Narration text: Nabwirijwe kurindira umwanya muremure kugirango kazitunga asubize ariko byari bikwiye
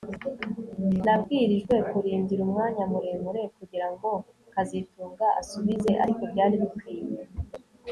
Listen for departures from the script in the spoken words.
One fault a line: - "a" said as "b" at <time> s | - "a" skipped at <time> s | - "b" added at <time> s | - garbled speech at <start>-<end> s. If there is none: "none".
none